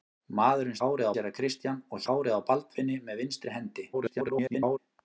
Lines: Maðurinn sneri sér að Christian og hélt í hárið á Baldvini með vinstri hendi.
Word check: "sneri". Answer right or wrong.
wrong